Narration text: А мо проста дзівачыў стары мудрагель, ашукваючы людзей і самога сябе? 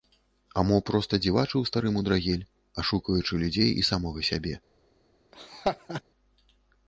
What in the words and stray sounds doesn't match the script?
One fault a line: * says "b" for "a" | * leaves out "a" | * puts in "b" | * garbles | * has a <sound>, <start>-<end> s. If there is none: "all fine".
* has a laugh, 5.3-6.0 s